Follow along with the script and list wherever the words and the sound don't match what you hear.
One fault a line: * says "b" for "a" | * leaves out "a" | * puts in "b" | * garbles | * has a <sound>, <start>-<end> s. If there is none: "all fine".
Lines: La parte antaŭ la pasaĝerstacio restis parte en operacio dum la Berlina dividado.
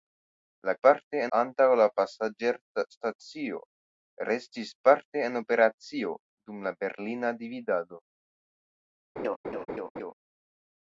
* has a laugh, 9.2-10.1 s